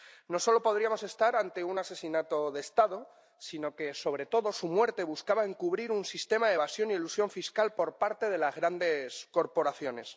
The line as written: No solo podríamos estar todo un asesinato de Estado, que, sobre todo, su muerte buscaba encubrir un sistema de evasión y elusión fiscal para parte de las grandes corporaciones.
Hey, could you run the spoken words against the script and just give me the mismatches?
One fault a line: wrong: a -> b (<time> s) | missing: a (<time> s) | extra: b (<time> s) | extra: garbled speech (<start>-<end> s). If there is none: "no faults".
wrong: todo -> ante (1.4 s)
extra: sino (3.4 s)
wrong: para -> por (7.7 s)